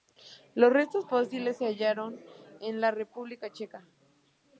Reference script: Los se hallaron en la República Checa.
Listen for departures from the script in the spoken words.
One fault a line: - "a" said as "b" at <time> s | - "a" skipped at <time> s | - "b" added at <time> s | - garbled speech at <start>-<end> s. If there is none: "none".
- "restos fósiles" added at 0.7 s